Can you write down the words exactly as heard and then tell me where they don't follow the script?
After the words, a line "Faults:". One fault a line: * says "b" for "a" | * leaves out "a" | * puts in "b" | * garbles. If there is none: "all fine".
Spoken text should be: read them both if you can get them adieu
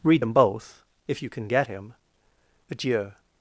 read them both if you can get him adieu
Faults:
* says "him" for "them"